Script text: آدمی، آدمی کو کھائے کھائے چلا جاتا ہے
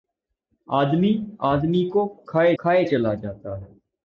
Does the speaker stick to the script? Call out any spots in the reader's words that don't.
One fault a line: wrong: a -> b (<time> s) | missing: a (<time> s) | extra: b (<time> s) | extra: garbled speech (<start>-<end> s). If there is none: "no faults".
no faults